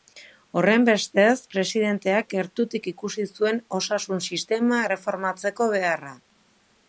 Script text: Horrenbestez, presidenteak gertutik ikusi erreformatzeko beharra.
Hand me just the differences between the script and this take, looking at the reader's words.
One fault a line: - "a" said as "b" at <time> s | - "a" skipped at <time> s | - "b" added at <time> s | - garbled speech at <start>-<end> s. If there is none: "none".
- "zuen osasun sistema" added at 3.4 s